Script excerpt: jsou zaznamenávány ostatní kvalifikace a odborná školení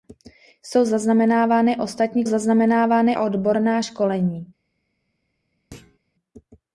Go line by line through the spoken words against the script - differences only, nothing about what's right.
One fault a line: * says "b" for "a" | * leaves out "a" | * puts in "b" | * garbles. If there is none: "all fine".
* says "zaznamenávány" for "kvalifikace"